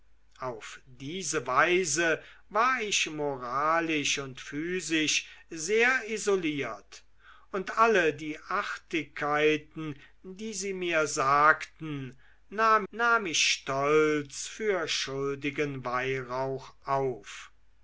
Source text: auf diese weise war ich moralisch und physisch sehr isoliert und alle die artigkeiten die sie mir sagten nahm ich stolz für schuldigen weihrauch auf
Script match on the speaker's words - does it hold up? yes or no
no